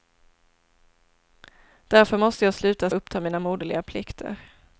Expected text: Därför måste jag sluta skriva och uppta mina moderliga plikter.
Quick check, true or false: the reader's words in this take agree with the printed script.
false